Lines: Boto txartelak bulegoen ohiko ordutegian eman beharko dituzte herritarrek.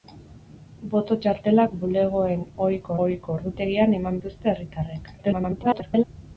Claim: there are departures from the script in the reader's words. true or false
true